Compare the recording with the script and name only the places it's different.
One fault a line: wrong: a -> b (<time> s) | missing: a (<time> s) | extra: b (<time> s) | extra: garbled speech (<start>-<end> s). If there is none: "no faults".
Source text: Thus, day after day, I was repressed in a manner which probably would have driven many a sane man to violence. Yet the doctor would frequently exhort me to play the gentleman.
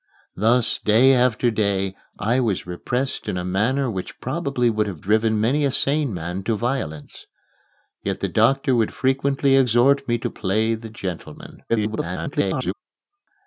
extra: garbled speech (11.7-12.7 s)